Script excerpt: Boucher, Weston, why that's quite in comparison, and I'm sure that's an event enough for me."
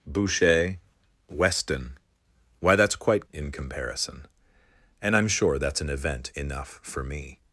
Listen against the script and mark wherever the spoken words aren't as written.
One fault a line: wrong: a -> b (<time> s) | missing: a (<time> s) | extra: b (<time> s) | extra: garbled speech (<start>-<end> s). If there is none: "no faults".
no faults